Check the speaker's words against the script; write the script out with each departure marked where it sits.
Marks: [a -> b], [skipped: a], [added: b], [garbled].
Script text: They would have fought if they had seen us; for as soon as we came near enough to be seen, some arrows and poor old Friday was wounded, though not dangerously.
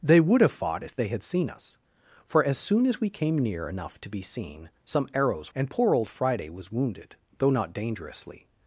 They would have fought if they had seen us; for as soon as we came near enough to be seen, some arrows and poor old Friday was wounded, though not dangerously.